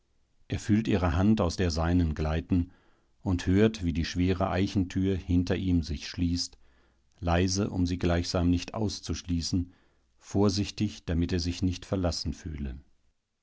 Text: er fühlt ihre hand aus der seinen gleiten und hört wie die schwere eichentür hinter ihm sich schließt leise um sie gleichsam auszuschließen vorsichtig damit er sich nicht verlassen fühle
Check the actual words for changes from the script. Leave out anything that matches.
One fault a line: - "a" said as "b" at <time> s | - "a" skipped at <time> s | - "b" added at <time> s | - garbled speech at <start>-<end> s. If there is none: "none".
- "nicht" added at 8.5 s